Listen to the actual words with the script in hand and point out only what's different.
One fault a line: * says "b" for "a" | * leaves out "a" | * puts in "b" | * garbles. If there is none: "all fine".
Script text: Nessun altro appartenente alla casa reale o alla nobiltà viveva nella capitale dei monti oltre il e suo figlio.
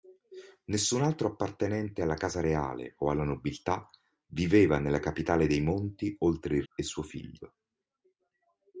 all fine